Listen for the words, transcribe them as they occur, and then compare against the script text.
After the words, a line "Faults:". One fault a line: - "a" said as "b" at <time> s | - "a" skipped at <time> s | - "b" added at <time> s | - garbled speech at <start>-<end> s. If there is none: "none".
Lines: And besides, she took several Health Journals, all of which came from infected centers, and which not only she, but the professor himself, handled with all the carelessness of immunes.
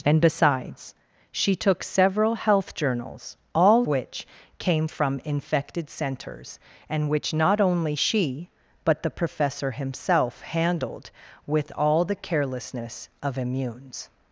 And besides, she took several Health Journals, all which came from infected centers, and which not only she, but the professor himself, handled with all the carelessness of immunes.
Faults:
- "of" skipped at 3.9 s